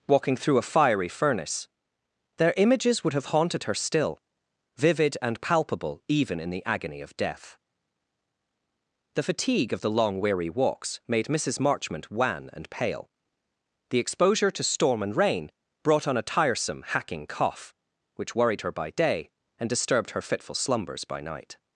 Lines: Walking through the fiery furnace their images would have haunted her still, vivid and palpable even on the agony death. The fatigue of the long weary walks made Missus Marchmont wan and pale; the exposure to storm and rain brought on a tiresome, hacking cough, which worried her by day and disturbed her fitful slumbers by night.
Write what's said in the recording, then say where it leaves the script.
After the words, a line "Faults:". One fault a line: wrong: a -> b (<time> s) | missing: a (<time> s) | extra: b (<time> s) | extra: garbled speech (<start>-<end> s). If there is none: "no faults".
Walking through a fiery furnace their images would have haunted her still, vivid and palpable even in the agony of death. The fatigue of the long weary walks made Missus Marchmont wan and pale; the exposure to storm and rain brought on a tiresome, hacking cough, which worried her by day and disturbed her fitful slumbers by night.
Faults:
wrong: the -> a (0.6 s)
wrong: on -> in (6.4 s)
extra: of (7.0 s)